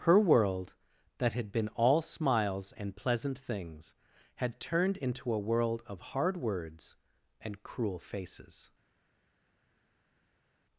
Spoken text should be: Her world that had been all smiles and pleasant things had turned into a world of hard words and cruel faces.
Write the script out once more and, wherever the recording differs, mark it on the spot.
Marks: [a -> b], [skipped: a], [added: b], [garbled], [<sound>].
Her world that had been all smiles and pleasant things had turned into a world of hard words and cruel faces.